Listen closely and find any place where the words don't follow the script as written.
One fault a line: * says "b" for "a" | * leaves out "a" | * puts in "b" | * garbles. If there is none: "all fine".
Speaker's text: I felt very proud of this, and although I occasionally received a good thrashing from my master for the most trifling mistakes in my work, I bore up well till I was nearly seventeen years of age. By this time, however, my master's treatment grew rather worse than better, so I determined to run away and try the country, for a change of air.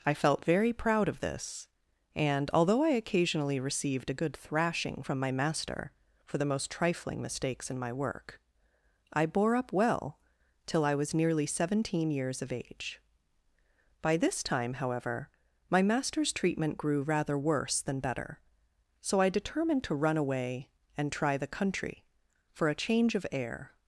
all fine